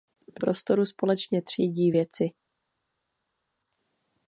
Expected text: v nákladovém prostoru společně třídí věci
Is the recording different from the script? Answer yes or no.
yes